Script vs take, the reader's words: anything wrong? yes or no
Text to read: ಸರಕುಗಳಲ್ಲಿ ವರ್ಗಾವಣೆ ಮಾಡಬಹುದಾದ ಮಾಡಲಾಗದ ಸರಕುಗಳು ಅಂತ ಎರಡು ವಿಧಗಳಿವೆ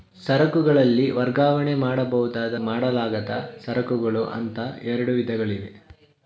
no